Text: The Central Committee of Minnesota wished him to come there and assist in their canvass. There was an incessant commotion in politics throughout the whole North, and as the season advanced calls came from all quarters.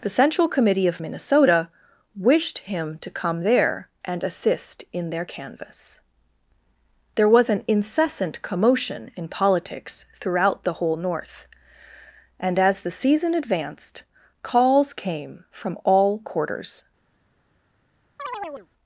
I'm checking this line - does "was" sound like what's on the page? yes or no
yes